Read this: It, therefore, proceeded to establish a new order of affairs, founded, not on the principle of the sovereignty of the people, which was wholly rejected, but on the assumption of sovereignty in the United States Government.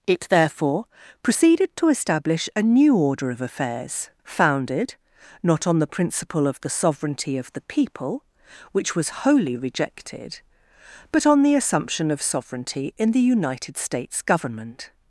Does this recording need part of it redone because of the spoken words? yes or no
no